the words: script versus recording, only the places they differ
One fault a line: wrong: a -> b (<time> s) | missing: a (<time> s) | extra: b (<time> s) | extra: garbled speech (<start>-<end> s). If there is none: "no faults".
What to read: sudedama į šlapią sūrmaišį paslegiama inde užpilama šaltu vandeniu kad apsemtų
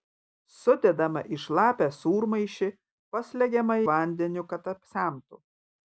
missing: inde užpilama šaltu (3.8 s)